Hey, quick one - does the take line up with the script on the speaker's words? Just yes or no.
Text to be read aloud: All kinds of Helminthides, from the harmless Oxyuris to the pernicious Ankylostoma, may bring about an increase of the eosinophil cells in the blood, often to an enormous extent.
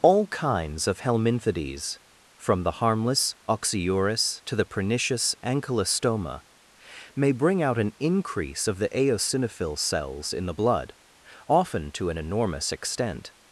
no